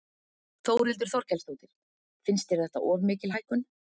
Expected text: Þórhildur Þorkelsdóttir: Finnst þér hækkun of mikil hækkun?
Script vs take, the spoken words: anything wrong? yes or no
yes